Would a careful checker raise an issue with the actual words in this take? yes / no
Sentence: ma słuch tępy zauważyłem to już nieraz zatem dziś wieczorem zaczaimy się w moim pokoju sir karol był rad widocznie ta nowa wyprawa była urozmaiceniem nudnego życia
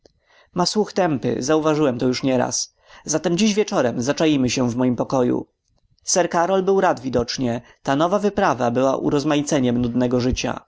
no